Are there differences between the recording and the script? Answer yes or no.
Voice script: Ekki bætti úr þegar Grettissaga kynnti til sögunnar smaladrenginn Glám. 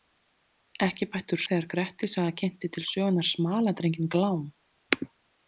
no